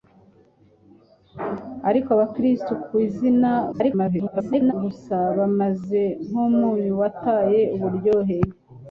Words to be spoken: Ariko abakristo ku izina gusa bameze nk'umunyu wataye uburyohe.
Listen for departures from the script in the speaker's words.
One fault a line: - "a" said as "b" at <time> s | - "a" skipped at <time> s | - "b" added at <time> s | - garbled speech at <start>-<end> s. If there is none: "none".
- garbled speech at 3.7-4.7 s